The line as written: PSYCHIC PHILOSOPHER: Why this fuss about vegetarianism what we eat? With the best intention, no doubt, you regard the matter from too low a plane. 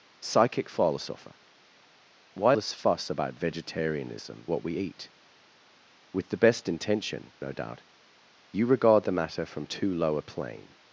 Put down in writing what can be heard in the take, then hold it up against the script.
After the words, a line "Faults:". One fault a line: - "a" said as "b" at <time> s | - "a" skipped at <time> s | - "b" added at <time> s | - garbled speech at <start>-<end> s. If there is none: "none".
PSYCHIC PHILOSOPHER: Why this fuss about vegetarianism what we eat? With the best intention, no doubt, you regard the matter from too low a plane.
Faults:
none